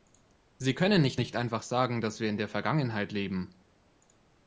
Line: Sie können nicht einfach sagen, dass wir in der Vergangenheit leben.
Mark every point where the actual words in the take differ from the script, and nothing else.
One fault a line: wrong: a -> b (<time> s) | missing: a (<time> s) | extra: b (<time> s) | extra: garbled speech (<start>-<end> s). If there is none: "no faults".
extra: nicht (1.2 s)